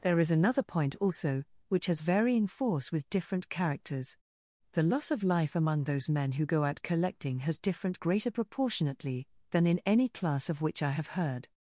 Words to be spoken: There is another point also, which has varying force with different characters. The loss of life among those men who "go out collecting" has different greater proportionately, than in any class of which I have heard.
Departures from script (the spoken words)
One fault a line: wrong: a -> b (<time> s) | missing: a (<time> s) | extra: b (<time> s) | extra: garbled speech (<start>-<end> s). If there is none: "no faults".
no faults